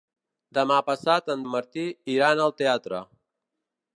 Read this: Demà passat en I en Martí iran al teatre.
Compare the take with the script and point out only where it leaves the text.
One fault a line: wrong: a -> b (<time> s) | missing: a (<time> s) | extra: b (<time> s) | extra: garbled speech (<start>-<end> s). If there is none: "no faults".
no faults